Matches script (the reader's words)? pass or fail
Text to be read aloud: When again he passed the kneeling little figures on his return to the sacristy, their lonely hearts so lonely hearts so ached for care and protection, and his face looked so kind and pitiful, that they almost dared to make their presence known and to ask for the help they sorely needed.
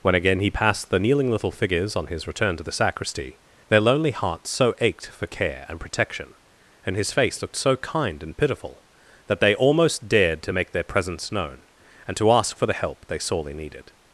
fail